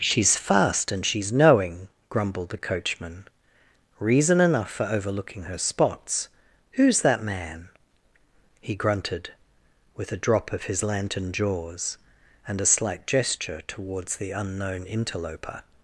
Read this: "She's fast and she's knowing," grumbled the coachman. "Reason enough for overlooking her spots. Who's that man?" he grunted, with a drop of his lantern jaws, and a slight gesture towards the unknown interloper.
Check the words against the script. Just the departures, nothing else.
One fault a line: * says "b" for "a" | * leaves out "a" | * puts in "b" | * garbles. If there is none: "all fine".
all fine